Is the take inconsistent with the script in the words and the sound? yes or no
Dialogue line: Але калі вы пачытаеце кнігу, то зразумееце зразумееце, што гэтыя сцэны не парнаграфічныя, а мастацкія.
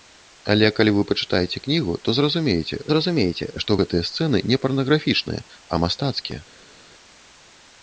no